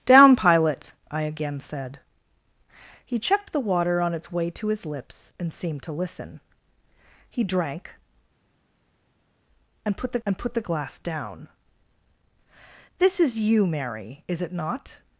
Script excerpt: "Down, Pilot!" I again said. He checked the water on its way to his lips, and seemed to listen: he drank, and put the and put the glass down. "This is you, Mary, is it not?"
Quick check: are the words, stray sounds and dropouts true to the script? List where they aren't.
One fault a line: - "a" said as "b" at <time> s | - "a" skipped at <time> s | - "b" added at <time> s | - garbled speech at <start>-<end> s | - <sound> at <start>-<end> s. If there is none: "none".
none